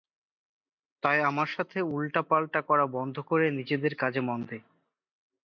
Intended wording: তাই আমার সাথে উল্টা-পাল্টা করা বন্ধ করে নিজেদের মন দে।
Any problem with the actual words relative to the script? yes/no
yes